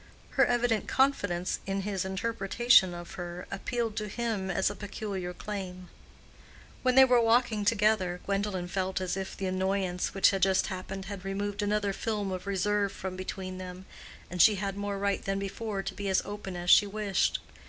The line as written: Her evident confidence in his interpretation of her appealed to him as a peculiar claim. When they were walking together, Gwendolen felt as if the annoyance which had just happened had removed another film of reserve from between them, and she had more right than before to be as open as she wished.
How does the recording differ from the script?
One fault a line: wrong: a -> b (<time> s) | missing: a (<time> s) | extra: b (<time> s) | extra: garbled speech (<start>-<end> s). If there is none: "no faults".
no faults